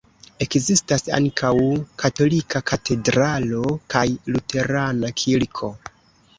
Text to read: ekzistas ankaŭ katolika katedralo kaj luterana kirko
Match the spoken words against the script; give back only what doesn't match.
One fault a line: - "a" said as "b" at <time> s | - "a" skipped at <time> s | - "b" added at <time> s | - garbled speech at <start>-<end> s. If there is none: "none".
none